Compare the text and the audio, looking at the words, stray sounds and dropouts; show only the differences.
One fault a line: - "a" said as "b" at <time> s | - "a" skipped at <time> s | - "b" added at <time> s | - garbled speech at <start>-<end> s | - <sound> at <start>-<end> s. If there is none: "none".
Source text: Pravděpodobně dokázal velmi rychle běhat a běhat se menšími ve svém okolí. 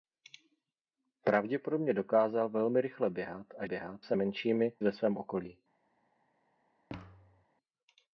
- thud at 6.9-7.5 s